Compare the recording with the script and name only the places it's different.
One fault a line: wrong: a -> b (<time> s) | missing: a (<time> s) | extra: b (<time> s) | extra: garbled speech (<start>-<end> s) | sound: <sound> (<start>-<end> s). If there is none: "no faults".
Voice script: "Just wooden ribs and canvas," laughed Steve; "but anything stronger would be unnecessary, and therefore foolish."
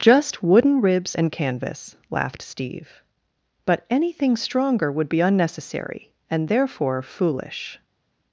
no faults